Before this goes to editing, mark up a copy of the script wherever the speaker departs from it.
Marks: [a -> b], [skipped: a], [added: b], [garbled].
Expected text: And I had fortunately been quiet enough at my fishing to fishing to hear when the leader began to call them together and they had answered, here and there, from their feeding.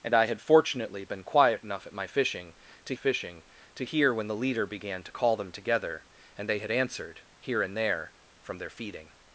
And I had fortunately been quiet enough at my fishing to fishing to hear when the leader began to call them together and they had answered, here and there, from their feeding.